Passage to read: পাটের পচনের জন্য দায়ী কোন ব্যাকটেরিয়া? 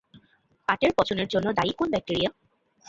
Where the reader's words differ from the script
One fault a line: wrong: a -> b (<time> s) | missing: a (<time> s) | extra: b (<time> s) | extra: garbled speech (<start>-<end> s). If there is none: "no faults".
no faults